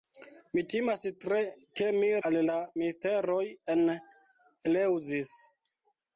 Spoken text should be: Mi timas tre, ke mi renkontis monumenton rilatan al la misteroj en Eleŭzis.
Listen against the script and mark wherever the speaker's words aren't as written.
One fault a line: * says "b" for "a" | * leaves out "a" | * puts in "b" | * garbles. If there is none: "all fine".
* leaves out "renkontis monumenton rilatan"